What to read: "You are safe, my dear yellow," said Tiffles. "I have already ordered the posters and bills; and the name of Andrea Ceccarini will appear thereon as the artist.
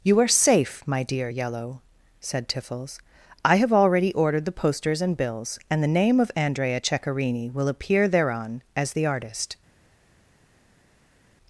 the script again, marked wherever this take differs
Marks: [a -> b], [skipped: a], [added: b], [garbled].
"You are safe, my dear yellow," said Tiffles. "I have already ordered the posters and bills; and the name of Andrea Ceccarini will appear thereon as the artist.